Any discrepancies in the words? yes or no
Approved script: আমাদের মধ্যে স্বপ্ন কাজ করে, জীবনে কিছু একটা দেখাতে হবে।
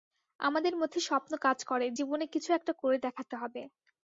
yes